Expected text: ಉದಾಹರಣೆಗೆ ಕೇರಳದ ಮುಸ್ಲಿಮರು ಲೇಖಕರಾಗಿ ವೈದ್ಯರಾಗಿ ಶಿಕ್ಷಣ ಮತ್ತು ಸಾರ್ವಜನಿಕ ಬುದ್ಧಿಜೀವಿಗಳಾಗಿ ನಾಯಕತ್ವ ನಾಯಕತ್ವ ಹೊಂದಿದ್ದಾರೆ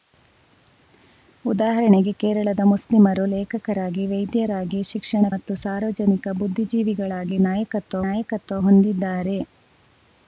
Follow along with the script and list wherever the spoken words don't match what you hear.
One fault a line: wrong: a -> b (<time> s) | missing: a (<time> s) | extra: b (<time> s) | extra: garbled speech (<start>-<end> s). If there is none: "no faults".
no faults